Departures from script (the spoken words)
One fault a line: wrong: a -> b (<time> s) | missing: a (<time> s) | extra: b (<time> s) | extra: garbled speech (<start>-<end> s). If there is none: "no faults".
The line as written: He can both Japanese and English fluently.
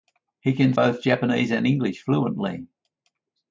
no faults